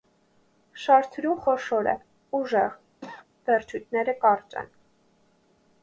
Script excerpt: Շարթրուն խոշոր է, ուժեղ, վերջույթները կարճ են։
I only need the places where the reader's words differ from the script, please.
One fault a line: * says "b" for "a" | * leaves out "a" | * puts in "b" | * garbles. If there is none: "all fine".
all fine